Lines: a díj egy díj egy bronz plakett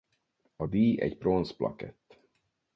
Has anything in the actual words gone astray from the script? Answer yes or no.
yes